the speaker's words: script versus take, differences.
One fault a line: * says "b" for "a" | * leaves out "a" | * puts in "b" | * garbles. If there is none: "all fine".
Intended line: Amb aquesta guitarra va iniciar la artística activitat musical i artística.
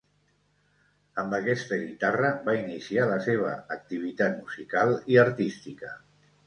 * says "seva" for "artística"